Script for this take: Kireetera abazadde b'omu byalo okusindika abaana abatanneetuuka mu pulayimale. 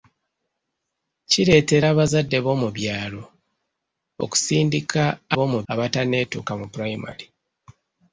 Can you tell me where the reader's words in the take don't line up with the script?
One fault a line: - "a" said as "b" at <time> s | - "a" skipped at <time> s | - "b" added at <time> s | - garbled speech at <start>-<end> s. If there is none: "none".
- "abaana" said as "b'omu" at 5.3 s